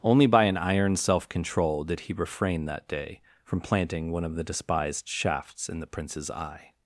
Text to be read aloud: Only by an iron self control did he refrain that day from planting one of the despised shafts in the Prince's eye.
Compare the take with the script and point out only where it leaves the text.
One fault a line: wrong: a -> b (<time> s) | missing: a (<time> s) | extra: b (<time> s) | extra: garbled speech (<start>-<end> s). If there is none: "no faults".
no faults